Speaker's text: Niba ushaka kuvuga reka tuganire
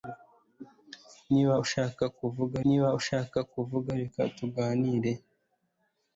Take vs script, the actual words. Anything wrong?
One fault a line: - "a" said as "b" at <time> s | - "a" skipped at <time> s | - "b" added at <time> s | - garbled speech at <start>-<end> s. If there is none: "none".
- "niba ushaka kuvuga" added at 2.6 s